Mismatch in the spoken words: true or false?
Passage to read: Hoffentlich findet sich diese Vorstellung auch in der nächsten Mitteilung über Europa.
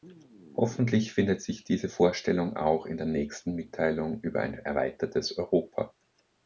true